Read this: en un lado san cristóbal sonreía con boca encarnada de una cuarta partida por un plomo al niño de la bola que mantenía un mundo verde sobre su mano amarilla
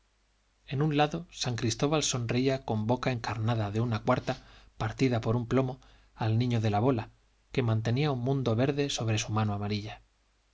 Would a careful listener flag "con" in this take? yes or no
no